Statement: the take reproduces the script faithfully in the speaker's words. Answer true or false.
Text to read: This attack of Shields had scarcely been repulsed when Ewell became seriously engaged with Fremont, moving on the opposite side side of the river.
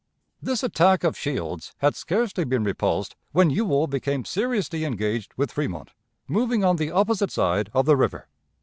false